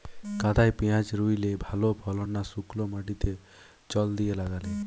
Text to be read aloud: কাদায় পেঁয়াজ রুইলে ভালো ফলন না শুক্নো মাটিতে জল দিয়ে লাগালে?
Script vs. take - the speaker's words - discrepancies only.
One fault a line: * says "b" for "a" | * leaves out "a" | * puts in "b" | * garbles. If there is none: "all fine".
all fine